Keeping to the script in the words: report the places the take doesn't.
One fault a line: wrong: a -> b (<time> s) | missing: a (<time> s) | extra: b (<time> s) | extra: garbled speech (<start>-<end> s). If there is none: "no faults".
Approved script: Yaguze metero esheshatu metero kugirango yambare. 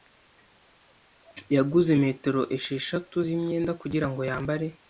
wrong: metero -> z'imyenda (3.3 s)